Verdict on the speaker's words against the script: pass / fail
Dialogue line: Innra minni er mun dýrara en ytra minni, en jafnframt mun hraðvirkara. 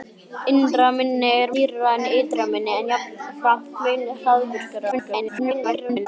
fail